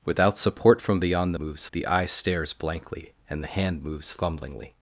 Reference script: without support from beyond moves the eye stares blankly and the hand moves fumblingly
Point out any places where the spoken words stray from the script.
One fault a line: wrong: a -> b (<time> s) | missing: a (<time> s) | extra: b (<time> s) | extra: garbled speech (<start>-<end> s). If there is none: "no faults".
no faults